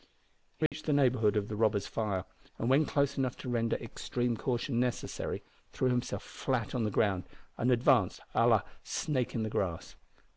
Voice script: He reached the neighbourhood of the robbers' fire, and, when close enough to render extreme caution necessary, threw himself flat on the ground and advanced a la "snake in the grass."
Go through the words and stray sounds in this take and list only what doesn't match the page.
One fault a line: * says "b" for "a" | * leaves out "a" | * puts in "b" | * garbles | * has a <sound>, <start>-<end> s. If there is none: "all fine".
* has a dropout, 0.7-0.7 s